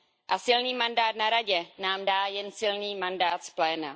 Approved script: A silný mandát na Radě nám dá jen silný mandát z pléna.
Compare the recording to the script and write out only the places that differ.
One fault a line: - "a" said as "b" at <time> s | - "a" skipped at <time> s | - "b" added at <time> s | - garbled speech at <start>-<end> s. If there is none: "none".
none